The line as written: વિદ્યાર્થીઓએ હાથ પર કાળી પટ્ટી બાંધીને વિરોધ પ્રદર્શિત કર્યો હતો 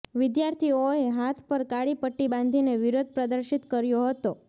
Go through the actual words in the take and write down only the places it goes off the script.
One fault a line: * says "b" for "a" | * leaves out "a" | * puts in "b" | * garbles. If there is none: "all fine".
all fine